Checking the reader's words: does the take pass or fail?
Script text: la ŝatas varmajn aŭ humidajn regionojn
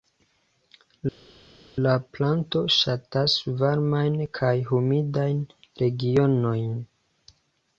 fail